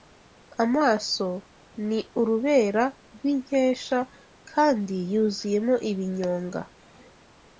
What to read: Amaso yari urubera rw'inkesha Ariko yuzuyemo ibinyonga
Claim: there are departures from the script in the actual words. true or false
true